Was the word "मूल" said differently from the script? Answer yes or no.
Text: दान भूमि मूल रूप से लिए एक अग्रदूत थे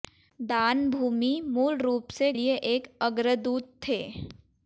no